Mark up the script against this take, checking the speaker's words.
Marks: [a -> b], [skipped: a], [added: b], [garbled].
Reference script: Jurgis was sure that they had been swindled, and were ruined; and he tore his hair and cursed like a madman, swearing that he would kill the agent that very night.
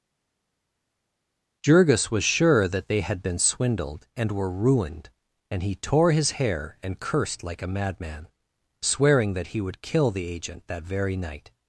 Jurgis was sure that they had been swindled, and were ruined; and he tore his hair and cursed like a madman, swearing that he would kill the agent that very night.